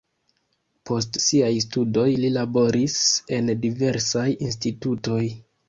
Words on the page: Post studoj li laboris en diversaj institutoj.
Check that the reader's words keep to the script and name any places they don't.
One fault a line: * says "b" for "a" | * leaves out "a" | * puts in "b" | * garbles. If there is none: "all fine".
* puts in "siaj"